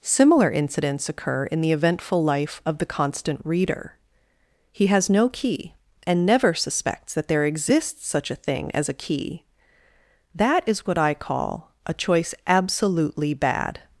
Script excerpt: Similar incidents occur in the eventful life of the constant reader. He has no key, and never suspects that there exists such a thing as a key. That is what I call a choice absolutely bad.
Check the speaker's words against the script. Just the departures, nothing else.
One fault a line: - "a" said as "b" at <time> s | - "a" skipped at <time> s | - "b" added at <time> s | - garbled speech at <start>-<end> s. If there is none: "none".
none